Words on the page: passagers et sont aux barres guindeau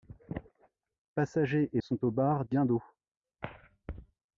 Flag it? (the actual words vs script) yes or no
no